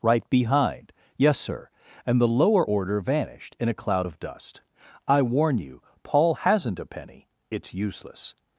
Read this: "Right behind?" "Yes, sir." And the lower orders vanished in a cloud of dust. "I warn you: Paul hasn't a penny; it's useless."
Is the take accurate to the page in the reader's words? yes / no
no